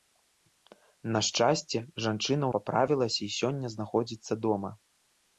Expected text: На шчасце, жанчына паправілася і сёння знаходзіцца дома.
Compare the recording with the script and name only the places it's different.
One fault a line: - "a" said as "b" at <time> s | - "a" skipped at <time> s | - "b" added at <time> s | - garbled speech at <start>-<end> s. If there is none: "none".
none